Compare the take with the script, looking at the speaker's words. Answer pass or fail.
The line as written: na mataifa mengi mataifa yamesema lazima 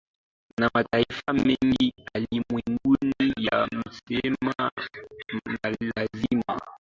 fail